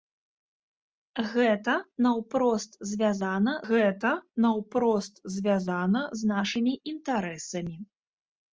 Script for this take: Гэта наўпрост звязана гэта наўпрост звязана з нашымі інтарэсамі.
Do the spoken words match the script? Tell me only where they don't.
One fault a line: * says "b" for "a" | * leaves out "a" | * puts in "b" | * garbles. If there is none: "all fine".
all fine